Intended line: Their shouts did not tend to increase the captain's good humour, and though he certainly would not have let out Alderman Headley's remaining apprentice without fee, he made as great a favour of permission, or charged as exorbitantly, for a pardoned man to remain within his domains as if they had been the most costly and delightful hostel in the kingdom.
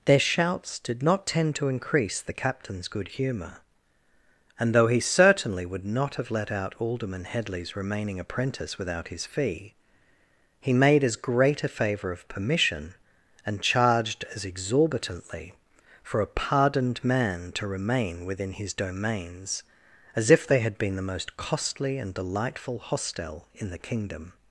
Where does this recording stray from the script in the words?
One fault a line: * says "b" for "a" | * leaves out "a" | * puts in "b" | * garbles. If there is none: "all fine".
* puts in "his"
* says "and" for "or"